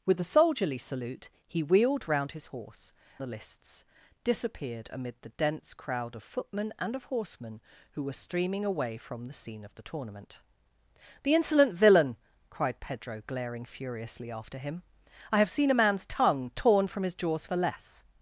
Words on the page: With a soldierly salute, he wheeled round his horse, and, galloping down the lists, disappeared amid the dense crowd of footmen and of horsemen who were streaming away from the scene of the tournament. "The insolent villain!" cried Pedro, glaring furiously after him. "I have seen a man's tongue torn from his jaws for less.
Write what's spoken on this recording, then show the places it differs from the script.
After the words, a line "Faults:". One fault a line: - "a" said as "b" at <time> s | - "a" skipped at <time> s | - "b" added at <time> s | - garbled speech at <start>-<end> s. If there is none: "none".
With a soldierly salute, he wheeled round his horse, the lists, disappeared amid the dense crowd of footmen and of horsemen who were streaming away from the scene of the tournament. "The insolent villain!" cried Pedro, glaring furiously after him. "I have seen a man's tongue torn from his jaws for less.
Faults:
- "and galloping down" skipped at 2.9 s